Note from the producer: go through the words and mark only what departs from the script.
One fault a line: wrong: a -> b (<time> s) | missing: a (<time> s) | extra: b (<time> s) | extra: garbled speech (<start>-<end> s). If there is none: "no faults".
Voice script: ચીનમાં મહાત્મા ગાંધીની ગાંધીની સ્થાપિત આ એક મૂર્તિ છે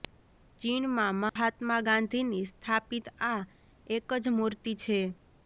missing: ગાંધીની (2.4 s)
extra: જ (4.2 s)